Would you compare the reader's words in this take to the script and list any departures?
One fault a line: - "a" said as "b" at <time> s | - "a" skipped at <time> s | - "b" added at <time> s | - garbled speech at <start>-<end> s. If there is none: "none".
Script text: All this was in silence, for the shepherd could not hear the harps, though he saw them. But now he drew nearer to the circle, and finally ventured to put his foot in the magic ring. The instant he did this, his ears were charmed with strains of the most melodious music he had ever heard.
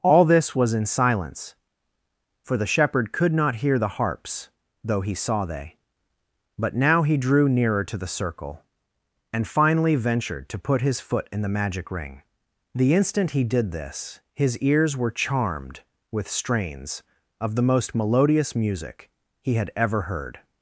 - "them" said as "they" at 5.5 s